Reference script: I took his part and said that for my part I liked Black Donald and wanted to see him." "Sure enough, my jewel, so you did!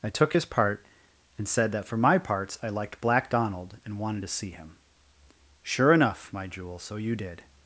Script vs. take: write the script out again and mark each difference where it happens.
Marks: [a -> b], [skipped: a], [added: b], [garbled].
I took his part and said that for my [part -> parts] I liked Black Donald and wanted to see him." "Sure enough, my jewel, so you did!